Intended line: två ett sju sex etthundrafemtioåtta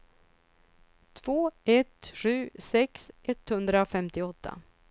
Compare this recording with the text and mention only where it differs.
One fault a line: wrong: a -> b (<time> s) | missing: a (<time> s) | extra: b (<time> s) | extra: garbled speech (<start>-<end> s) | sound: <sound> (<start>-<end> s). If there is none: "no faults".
no faults